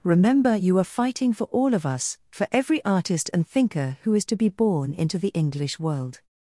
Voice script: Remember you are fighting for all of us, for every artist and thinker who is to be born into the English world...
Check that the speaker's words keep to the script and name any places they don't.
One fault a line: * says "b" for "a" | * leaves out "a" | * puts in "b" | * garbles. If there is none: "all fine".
all fine